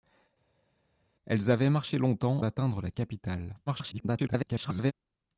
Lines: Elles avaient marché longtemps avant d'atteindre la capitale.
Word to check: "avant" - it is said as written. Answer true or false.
false